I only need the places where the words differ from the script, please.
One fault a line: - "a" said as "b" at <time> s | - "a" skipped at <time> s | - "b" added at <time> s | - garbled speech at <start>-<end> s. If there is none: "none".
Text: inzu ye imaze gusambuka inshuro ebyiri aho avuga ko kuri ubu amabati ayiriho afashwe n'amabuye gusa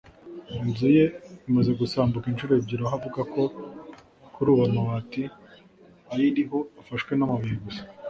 none